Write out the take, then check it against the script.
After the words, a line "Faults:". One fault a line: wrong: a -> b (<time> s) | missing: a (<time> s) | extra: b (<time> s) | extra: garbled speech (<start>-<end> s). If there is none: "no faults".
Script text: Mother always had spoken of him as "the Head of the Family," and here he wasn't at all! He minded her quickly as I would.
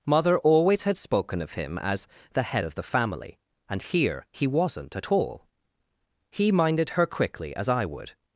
Mother always had spoken of him as "the Head of the Family," and here he wasn't at all! He minded her quickly as I would.
Faults:
no faults